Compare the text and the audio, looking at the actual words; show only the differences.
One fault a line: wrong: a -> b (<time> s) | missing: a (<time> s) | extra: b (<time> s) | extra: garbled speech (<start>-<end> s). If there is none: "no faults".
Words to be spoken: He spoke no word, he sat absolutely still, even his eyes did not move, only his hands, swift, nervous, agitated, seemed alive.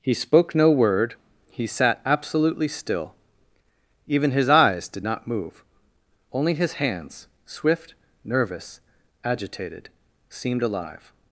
no faults